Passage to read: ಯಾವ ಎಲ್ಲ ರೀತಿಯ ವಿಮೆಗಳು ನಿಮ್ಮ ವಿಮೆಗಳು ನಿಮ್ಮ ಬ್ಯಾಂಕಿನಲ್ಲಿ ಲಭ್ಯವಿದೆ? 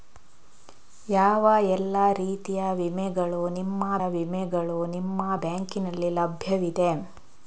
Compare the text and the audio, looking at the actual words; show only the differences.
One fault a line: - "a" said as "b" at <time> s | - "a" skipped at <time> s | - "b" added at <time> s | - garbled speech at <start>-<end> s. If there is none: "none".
none